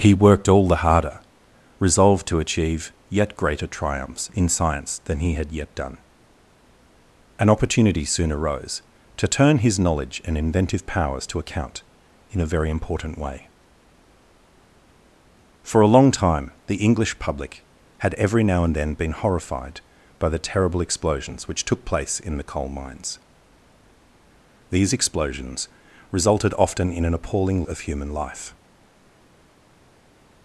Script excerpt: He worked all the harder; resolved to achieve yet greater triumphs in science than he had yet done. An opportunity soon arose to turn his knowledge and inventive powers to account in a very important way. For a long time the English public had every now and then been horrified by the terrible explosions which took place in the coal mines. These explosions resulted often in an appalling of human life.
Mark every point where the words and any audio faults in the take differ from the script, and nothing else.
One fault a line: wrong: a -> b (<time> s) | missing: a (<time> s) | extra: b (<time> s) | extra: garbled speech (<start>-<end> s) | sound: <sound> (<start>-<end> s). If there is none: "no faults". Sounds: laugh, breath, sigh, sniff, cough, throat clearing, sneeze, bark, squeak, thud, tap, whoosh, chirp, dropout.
no faults